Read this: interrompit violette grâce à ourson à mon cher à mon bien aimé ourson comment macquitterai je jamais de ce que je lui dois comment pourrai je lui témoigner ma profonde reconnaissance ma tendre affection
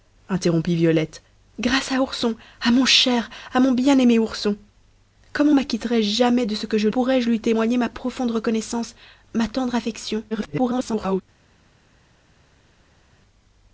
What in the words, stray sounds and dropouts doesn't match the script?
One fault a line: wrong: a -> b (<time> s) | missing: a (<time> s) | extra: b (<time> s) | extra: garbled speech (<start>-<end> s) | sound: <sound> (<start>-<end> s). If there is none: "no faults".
missing: lui dois comment (6.9 s)
extra: garbled speech (10.3-11.2 s)